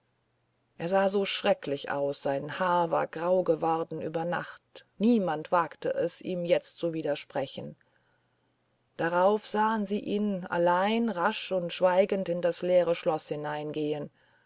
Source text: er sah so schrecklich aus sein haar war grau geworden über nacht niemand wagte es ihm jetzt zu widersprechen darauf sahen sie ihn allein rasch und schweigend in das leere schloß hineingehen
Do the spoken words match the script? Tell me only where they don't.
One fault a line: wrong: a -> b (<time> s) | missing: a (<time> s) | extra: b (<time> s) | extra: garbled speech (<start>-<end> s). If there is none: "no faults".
no faults